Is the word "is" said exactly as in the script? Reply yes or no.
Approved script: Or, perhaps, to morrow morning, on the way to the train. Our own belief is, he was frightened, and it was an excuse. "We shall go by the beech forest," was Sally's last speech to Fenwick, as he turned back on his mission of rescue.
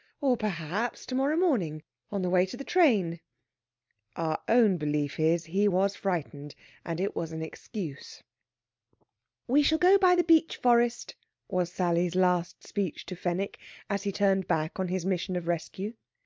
yes